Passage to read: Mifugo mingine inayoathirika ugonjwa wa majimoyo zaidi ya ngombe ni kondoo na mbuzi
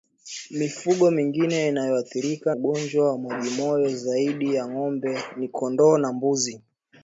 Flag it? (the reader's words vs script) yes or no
no